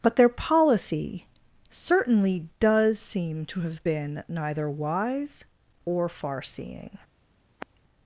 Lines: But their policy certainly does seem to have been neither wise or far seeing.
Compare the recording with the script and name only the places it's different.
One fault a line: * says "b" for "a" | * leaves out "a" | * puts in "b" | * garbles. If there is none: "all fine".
all fine